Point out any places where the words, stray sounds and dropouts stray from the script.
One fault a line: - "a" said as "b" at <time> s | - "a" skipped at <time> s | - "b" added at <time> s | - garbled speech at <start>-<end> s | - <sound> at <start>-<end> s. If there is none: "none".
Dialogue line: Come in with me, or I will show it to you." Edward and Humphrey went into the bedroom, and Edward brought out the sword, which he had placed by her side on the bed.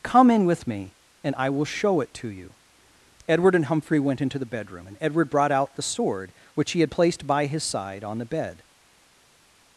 - "or" said as "and" at 1.2 s
- "her" said as "his" at 7.5 s